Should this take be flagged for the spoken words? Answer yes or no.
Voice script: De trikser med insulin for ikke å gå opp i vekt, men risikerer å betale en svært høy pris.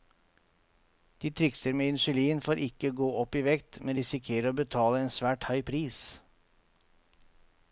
no